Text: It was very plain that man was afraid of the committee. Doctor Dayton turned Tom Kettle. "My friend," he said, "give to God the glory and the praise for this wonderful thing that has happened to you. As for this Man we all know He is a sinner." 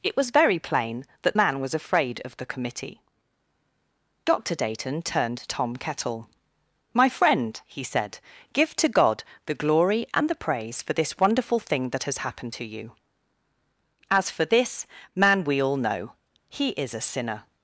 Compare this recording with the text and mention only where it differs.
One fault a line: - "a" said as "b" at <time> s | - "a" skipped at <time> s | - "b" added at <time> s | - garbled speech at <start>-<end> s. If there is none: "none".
none